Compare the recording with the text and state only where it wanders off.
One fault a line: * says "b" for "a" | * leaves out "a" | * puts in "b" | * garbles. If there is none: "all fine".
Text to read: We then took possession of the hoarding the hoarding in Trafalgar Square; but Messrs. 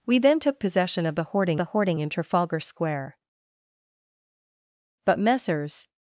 all fine